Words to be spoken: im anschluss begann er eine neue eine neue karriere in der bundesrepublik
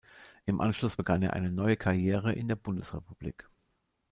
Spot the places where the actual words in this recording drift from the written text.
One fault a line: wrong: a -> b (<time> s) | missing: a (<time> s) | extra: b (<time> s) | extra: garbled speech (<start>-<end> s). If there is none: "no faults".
missing: eine neue (1.7 s)